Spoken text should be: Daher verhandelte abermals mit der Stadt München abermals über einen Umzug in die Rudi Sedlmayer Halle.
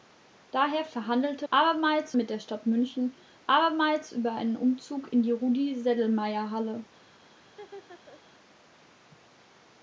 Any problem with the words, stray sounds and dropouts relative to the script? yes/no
yes